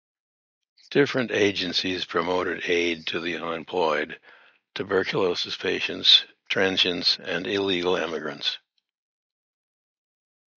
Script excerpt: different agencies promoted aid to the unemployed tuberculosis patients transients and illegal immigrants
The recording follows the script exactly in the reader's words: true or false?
true